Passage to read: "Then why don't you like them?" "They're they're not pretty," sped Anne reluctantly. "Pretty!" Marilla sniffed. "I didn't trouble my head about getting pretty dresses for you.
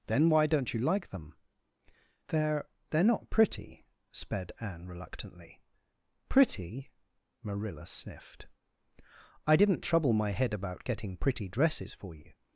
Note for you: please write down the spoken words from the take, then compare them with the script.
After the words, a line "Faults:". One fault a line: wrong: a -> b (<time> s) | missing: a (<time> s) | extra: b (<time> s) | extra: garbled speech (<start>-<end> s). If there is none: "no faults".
"Then why don't you like them?" "They're they're not pretty," sped Anne reluctantly. "Pretty!" Marilla sniffed. "I didn't trouble my head about getting pretty dresses for you.
Faults:
no faults